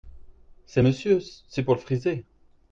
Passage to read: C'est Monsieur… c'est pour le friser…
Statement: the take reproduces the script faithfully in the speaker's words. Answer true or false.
true